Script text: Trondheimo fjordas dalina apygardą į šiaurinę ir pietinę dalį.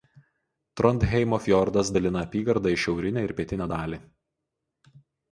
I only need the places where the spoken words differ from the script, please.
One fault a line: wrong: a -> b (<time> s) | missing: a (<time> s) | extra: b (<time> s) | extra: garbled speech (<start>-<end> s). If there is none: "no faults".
no faults